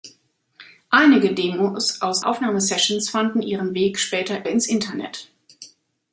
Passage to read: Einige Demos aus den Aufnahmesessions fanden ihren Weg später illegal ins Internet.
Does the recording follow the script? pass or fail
fail